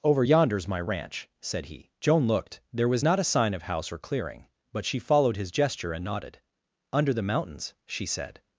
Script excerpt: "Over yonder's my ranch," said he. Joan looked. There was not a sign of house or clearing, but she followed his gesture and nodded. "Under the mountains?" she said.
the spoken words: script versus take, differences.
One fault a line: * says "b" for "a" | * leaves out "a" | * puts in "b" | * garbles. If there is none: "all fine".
all fine